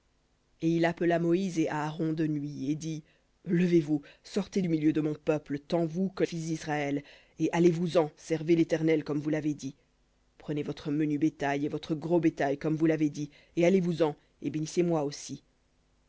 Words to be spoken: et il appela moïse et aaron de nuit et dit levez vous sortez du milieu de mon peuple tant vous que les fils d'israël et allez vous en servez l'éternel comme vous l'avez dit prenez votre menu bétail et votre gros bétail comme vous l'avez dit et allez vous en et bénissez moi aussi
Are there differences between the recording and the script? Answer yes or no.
yes